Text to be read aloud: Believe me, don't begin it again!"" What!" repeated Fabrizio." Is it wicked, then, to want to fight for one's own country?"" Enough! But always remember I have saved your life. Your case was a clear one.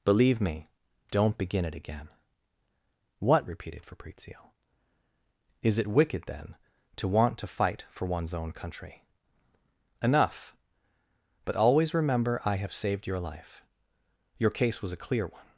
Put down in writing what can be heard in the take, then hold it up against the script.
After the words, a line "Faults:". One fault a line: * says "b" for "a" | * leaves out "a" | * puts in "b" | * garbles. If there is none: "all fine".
Believe me, don't begin it again!"" What!" repeated Fabrizio." Is it wicked, then, to want to fight for one's own country?"" Enough! But always remember I have saved your life. Your case was a clear one.
Faults:
all fine